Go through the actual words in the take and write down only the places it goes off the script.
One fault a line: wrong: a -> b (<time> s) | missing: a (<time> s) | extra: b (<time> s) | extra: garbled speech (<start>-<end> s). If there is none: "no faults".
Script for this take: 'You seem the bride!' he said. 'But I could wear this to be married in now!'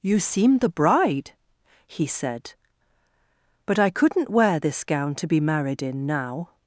wrong: could -> couldn't (3.9 s)
extra: gown (4.8 s)